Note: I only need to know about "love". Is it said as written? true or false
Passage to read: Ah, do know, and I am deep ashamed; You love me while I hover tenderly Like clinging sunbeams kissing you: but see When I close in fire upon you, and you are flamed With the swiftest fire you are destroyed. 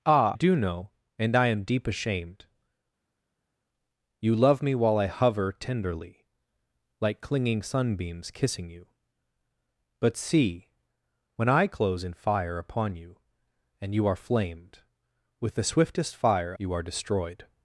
true